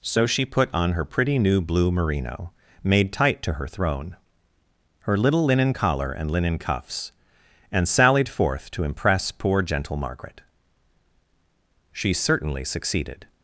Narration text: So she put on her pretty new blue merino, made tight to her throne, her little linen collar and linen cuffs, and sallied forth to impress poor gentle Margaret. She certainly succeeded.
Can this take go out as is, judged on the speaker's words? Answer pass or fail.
pass